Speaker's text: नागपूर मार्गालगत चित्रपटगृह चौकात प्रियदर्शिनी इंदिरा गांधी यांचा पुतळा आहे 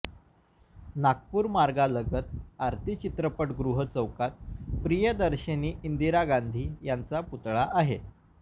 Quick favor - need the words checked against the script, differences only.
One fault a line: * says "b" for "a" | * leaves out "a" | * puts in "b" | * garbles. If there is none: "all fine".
* puts in "आरती"